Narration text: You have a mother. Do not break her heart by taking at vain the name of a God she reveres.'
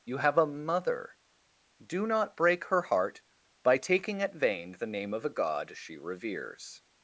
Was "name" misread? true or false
false